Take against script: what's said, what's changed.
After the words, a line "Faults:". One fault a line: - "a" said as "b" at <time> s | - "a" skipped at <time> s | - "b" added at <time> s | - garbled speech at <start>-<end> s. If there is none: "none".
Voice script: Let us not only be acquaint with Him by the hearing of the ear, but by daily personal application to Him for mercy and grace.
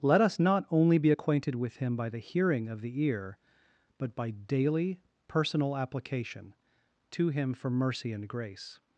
Let us not only be acquainted with Him by the hearing of the ear, but by daily personal application to Him for mercy and grace.
Faults:
- "acquaint" said as "acquainted" at 1.1 s